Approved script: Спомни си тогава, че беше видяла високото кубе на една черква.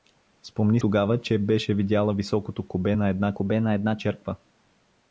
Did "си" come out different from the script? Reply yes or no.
yes